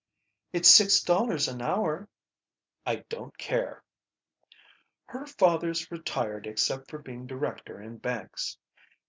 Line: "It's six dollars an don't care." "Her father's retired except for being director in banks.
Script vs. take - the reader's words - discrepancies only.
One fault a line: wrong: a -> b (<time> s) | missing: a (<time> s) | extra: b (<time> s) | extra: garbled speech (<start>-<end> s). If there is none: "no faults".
extra: hour I (1.6 s)